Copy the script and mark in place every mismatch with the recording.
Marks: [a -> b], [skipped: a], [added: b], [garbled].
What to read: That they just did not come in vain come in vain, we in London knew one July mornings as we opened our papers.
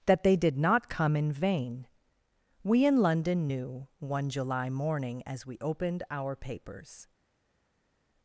That they [skipped: just] did not come in vain [skipped: come in vain,] we in London knew one July [mornings -> morning] as we opened our papers.